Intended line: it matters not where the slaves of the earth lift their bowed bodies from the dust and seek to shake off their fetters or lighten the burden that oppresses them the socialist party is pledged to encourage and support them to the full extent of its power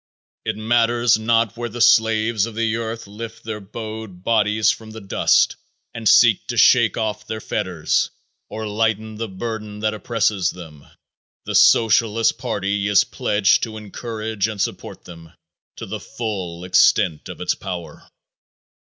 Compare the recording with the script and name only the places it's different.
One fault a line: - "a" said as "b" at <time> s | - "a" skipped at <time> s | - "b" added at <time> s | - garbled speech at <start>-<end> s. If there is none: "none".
none